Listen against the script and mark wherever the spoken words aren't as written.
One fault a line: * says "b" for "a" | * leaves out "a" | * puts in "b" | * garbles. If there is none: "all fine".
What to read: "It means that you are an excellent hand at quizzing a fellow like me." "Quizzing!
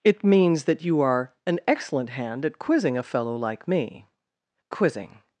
all fine